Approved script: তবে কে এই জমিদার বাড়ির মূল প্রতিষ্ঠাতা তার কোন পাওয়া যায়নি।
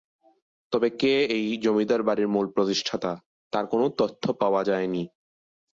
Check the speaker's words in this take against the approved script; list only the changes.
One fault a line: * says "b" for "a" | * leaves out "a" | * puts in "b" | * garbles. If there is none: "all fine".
* puts in "তথ্য"